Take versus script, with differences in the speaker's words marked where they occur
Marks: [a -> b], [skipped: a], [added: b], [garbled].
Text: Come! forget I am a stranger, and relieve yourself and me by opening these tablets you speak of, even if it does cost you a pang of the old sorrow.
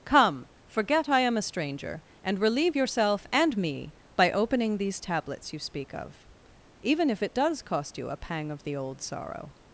Come! forget I am a stranger, and relieve yourself and me by opening these tablets you speak of, even if it does cost you a pang of the old sorrow.